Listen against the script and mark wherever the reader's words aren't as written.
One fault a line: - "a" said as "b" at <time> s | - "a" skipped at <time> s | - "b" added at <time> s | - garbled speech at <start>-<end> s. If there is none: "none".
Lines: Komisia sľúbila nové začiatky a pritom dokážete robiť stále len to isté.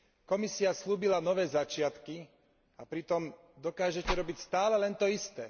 none